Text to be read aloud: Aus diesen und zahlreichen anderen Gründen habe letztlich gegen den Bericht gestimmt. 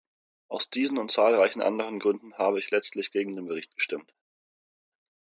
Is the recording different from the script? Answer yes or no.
yes